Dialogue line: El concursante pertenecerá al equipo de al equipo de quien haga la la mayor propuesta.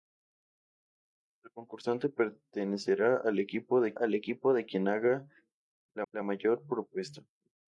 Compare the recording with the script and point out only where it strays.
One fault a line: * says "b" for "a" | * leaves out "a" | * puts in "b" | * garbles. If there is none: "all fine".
all fine